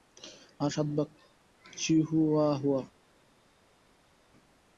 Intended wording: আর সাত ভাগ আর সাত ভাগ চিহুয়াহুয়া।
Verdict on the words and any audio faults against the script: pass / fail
fail